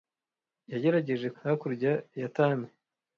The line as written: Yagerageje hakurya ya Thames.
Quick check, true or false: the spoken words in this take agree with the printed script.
true